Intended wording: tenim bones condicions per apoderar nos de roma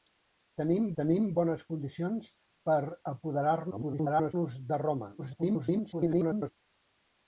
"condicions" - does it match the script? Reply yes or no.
yes